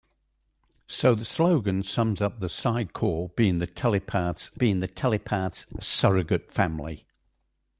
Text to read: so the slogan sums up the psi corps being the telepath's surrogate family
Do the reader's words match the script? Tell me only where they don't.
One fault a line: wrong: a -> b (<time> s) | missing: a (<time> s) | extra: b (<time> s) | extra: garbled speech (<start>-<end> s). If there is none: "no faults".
extra: being the telepath's (4.6 s)